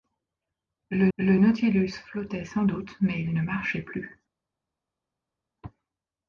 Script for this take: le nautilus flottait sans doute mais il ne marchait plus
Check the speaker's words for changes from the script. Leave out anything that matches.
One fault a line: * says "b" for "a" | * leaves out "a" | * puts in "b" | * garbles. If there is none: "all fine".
* puts in "le"